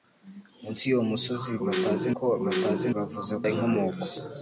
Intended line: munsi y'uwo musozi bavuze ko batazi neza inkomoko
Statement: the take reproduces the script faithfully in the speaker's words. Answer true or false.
false